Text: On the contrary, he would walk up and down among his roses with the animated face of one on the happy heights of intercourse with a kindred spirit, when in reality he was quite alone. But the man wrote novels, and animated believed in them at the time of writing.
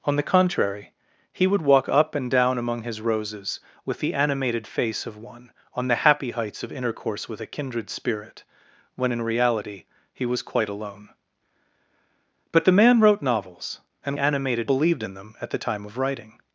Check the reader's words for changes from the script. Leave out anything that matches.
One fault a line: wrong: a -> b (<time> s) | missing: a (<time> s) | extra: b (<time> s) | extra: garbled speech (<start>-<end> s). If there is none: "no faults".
no faults